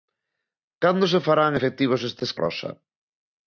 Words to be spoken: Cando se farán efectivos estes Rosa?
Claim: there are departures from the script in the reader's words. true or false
false